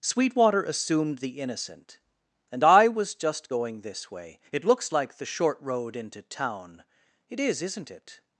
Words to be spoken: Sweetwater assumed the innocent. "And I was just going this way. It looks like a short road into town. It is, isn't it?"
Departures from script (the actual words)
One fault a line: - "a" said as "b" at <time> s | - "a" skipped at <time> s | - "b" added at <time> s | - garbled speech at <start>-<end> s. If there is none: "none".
- "a" said as "the" at 5.2 s